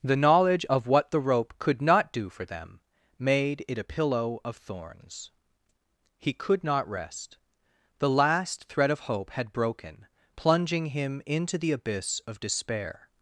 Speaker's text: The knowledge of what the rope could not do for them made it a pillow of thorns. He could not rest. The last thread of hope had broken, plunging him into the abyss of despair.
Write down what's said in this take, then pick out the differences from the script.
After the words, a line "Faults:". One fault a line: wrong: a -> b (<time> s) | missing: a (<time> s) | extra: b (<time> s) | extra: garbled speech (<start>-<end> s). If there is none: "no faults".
The knowledge of what the rope could not do for them made it a pillow of thorns. He could not rest. The last thread of hope had broken, plunging him into the abyss of despair.
Faults:
no faults